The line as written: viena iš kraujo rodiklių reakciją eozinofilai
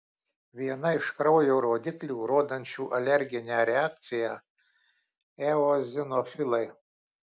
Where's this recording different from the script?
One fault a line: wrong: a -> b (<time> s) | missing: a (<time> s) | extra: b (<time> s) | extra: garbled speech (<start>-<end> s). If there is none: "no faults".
extra: rodančių alerginę (2.3 s)